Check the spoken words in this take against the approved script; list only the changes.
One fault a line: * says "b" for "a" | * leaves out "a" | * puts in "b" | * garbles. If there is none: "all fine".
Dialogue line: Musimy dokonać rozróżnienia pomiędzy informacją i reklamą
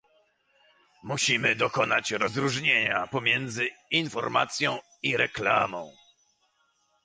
all fine